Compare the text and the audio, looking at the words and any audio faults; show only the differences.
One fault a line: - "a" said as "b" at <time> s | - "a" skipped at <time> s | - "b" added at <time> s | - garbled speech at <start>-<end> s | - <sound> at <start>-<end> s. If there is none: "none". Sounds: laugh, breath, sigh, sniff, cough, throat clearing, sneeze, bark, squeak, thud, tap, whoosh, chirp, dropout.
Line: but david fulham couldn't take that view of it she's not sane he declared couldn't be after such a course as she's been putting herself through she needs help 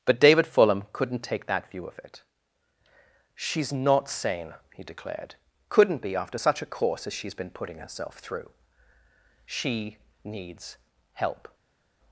none